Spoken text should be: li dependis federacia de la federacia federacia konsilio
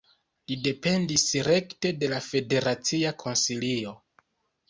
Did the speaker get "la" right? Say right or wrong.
right